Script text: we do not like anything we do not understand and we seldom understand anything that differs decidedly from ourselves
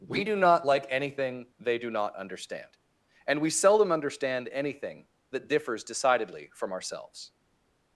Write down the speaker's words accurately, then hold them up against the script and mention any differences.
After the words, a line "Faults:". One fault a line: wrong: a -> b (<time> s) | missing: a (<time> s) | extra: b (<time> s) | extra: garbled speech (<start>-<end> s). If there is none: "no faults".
we do not like anything they do not understand and we seldom understand anything that differs decidedly from ourselves
Faults:
wrong: we -> they (1.6 s)